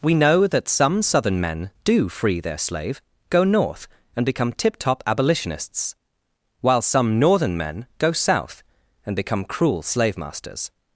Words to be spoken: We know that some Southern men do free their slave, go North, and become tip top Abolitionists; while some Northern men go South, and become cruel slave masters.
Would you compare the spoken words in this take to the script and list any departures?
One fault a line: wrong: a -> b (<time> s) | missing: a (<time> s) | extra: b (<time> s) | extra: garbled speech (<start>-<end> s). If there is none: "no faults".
no faults